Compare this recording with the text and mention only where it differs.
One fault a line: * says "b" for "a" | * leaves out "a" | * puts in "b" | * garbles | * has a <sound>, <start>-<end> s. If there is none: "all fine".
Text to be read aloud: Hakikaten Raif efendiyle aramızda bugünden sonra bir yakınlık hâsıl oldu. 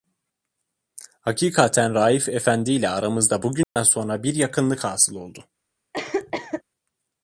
* has a dropout, 3.6-3.8 s
* has a cough, 5.9-6.6 s